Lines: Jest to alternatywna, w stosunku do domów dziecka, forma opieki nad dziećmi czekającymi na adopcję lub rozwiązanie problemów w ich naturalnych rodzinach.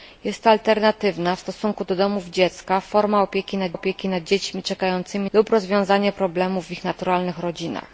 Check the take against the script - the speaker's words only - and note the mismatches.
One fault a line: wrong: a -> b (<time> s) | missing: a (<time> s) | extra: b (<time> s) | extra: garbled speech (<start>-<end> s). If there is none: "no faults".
extra: opieki nad (3.7 s)
missing: na adopcję (5.3 s)